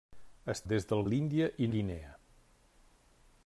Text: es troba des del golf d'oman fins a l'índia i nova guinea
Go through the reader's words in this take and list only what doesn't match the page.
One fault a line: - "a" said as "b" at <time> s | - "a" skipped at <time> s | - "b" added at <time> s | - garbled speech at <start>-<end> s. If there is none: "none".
- "troba" skipped at 0.6 s
- "golf d'oman fins" skipped at 1.0 s
- "nova" skipped at 1.7 s